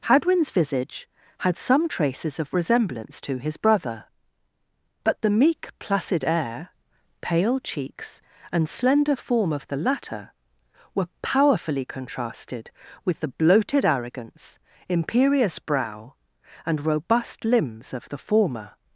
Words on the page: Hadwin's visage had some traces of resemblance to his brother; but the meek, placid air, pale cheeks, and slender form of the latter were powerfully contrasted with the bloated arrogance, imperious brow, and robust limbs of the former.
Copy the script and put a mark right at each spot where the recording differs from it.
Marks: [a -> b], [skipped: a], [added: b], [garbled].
Hadwin's visage had some traces of resemblance to his brother; but the meek, placid air, pale cheeks, and slender form of the latter were powerfully contrasted with the bloated arrogance, imperious brow, and robust limbs of the former.